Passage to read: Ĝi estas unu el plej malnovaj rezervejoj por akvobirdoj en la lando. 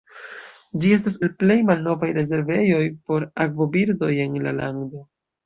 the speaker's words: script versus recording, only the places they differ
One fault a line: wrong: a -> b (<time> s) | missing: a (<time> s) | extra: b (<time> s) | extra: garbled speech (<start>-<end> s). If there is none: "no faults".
missing: unu (1.2 s)